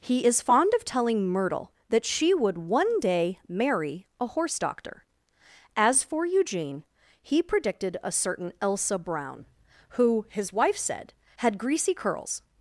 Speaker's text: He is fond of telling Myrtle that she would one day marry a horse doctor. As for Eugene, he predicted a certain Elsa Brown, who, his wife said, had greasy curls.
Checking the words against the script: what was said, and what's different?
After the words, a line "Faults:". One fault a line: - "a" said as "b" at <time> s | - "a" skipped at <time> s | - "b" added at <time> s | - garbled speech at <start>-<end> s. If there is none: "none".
He is fond of telling Myrtle that she would one day marry a horse doctor. As for Eugene, he predicted a certain Elsa Brown, who, his wife said, had greasy curls.
Faults:
none